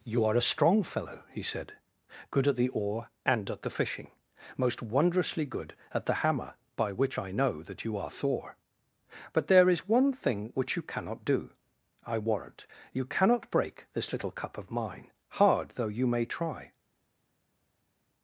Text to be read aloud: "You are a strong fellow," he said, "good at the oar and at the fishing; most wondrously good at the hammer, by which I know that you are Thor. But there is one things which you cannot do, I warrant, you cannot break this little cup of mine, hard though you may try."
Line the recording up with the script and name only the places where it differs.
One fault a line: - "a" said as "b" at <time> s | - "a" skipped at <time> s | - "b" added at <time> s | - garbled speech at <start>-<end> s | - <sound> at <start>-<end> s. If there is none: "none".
- "things" said as "thing" at 10.1 s